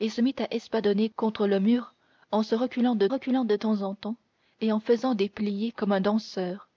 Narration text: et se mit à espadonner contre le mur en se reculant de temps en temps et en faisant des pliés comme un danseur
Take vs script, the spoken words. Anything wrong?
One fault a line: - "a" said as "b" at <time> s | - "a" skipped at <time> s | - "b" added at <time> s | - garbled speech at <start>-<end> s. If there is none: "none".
- "reculant de" added at 3.1 s